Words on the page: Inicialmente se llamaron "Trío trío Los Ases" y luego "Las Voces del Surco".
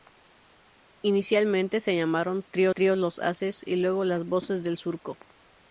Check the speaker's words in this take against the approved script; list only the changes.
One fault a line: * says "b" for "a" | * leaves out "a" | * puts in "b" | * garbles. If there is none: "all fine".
all fine